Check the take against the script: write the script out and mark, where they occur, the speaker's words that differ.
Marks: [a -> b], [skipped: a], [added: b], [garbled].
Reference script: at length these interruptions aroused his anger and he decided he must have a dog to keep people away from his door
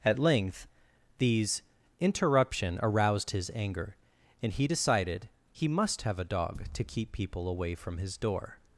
at length these [interruptions -> interruption] aroused his anger and he decided he must have a dog to keep people away from his door